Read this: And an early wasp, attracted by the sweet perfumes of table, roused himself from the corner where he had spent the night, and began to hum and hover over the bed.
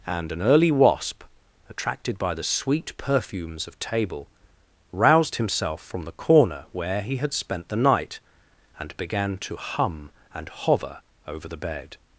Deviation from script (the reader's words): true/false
false